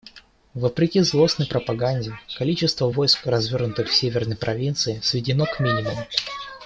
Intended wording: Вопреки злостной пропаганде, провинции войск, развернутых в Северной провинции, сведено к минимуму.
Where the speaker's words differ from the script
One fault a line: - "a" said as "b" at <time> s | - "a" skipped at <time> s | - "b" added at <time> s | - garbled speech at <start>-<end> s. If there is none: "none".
- "провинции" said as "количество" at 2.4 s